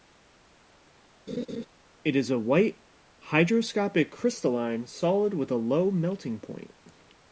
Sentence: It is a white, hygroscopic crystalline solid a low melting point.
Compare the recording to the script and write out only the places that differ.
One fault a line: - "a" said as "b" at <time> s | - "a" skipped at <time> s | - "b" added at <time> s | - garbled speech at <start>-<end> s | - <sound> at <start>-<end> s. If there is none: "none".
- laugh at 1.3-1.7 s
- "with" added at 5.3 s